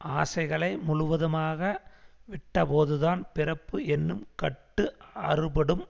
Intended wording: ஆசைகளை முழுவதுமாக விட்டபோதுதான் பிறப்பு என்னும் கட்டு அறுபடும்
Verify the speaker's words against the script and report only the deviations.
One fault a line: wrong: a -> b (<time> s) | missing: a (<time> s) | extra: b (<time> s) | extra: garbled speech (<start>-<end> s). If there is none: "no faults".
no faults